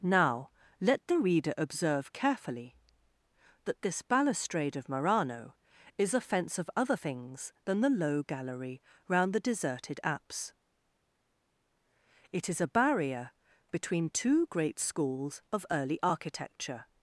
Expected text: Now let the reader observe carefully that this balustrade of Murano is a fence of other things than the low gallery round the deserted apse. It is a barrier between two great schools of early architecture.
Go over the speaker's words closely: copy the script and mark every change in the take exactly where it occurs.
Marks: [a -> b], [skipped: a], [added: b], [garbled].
Now let the reader observe carefully that this balustrade of Murano is a fence of other things than the low gallery round the deserted apse. It is a barrier between two great schools of early architecture.